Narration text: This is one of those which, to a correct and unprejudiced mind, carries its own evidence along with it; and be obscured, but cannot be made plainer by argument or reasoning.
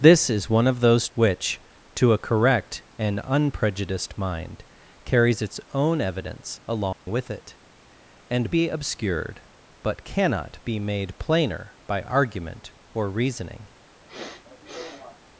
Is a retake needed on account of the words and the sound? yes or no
yes